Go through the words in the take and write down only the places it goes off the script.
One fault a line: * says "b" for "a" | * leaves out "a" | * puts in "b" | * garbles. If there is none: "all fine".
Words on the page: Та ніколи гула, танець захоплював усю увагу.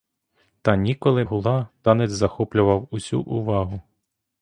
all fine